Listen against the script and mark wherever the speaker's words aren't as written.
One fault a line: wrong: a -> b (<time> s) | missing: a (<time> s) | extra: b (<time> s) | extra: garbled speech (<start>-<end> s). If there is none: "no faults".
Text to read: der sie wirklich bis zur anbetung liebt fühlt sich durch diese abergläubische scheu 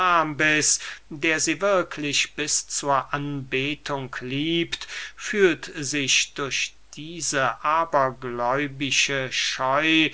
no faults